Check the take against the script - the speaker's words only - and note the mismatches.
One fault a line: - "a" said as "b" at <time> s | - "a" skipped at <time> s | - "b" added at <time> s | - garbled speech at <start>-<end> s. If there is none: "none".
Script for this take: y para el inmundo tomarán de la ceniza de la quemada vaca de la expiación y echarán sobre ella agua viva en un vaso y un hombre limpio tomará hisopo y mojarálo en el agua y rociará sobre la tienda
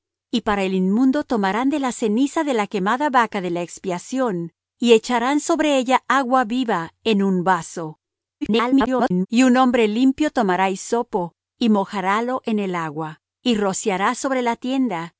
- garbled speech at 8.4-9.3 s